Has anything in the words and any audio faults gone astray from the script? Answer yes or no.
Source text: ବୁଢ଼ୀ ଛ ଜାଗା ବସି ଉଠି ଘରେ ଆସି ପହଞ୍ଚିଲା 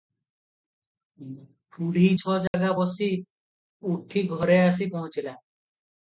yes